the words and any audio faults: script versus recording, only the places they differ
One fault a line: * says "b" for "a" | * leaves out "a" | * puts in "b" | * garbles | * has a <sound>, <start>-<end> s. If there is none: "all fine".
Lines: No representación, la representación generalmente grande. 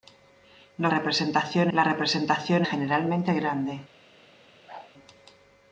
* has a whoosh, 4.7-4.9 s